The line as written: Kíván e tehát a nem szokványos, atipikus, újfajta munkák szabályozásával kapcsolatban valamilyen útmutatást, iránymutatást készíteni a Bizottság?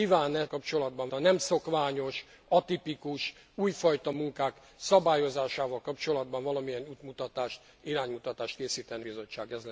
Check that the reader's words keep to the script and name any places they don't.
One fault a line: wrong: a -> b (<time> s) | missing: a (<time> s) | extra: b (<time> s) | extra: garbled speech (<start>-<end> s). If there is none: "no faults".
wrong: tehát -> kapcsolatban (0.5 s)
missing: a (9.1 s)